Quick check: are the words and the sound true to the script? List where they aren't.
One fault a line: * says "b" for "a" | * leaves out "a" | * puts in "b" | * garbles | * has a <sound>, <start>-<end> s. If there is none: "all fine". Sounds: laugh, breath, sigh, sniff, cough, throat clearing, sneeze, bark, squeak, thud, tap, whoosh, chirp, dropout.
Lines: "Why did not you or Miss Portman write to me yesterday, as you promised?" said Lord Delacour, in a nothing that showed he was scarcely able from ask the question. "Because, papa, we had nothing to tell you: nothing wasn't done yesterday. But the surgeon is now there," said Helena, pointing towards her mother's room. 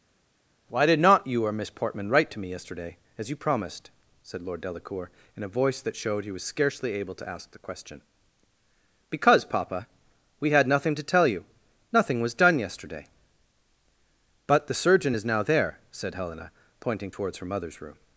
* says "voice" for "nothing"
* says "to" for "from"
* says "was" for "wasn't"